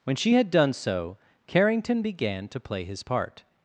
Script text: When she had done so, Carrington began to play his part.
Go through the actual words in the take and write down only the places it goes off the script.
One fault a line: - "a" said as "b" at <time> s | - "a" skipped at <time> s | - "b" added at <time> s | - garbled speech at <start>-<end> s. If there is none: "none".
none